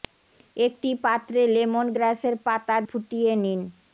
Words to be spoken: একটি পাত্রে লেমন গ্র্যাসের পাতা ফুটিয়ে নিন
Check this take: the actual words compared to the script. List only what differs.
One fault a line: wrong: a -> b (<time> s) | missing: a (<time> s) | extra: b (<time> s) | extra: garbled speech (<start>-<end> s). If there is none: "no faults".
no faults